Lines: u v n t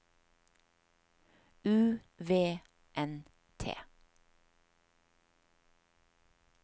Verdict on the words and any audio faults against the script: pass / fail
pass